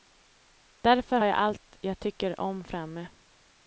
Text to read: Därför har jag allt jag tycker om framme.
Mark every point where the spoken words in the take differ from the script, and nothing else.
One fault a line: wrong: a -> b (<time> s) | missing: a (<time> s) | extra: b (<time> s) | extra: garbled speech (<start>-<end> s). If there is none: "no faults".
missing: har (1.2 s)